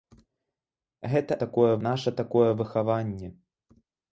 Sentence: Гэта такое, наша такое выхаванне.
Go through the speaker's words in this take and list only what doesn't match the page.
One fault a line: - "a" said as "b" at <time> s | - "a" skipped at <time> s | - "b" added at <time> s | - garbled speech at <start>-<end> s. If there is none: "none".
none